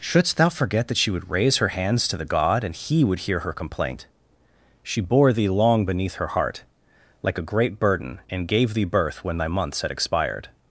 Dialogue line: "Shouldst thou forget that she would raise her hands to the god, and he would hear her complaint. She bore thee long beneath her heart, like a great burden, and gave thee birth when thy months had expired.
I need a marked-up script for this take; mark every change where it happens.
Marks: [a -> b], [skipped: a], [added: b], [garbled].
"Shouldst thou forget that she would raise her hands to the god, and he would hear her complaint. She bore thee long beneath her heart, like a great burden, and gave thee birth when thy months had expired.